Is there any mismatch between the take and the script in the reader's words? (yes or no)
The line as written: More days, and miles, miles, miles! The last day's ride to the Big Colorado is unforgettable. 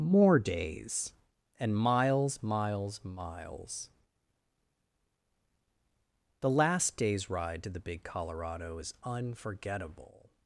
no